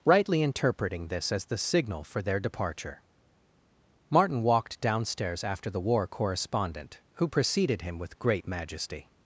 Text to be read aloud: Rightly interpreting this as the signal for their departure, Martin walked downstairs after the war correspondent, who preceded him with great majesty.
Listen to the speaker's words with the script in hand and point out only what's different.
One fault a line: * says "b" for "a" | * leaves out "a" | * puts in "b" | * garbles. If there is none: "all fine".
all fine